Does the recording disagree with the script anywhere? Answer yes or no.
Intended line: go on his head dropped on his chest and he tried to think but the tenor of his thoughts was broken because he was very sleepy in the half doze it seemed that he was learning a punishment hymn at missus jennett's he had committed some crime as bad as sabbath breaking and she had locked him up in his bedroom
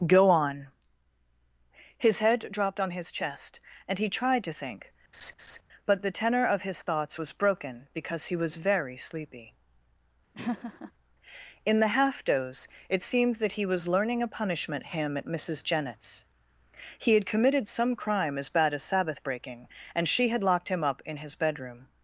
no